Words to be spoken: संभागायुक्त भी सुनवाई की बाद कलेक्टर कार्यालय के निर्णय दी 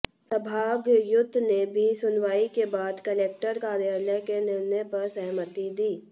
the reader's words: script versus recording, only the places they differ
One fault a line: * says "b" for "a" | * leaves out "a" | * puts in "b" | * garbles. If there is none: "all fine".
* puts in "ने"
* says "के" for "की"
* puts in "पर सहमति"